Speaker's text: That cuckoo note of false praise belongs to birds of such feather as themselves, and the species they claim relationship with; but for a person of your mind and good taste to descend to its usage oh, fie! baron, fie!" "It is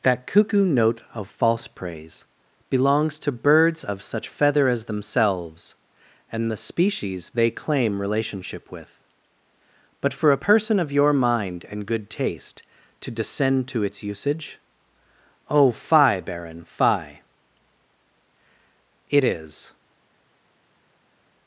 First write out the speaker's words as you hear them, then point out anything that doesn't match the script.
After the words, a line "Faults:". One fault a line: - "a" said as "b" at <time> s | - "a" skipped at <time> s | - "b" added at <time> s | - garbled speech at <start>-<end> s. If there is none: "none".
That cuckoo note of false praise belongs to birds of such feather as themselves, and the species they claim relationship with; but for a person of your mind and good taste to descend to its usage oh, fie! baron, fie!" "It is
Faults:
none